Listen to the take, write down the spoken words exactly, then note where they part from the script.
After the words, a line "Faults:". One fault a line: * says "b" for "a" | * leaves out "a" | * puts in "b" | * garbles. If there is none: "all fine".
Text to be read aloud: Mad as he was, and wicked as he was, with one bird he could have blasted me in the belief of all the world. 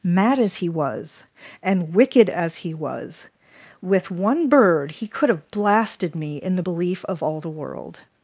Mad as he was, and wicked as he was, with one bird he could have blasted me in the belief of all the world.
Faults:
all fine